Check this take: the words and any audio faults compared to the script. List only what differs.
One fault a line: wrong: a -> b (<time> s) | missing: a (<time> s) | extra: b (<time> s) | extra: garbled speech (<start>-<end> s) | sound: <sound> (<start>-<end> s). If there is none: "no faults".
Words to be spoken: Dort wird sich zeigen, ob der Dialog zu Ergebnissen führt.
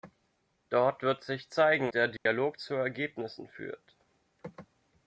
missing: ob (1.9 s)
sound: dropout (2.2-2.3 s)